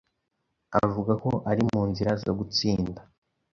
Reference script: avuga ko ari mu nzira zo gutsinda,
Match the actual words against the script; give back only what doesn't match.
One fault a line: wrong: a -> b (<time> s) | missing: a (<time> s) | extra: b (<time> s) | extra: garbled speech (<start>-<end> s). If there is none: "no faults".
no faults